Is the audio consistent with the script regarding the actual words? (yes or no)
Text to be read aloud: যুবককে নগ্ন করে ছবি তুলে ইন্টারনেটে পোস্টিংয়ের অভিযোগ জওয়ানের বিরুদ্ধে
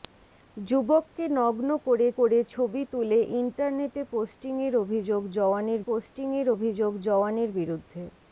no